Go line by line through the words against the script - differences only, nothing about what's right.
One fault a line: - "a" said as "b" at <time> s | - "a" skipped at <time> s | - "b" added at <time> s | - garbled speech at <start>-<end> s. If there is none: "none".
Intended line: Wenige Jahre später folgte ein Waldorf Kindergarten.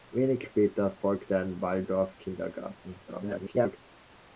- "Jahre" skipped at 0.5 s
- garbled speech at 3.1-3.8 s